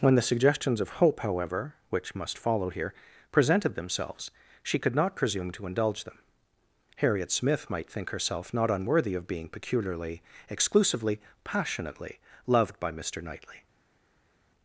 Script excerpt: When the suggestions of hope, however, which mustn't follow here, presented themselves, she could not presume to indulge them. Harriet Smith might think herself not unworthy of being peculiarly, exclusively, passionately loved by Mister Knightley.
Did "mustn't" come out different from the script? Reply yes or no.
yes